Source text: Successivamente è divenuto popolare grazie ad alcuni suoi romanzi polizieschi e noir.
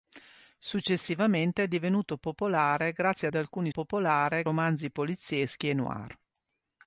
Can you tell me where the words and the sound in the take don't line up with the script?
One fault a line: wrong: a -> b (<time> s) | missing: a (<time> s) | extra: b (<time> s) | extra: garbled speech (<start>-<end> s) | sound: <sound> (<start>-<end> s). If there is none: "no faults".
wrong: suoi -> popolare (3.7 s)